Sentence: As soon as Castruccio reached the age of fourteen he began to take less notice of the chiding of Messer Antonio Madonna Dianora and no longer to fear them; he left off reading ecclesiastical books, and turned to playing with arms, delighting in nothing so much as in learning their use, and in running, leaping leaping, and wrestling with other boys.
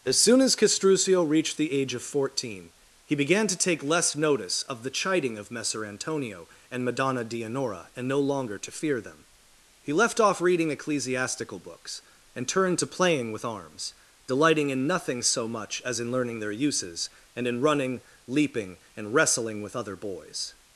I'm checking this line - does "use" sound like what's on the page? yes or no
no